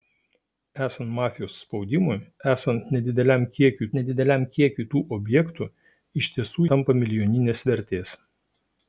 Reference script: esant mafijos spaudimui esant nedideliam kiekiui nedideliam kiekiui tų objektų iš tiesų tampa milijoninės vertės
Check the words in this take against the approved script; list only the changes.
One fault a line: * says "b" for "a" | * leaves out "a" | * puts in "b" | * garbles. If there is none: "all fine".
all fine